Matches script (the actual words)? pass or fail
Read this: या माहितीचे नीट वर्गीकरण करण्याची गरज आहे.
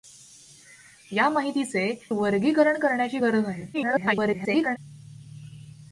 fail